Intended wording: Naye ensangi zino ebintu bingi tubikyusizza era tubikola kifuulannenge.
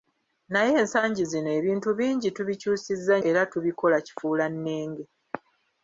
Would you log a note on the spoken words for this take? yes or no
no